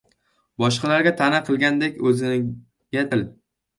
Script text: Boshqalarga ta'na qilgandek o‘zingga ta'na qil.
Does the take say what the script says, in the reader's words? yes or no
no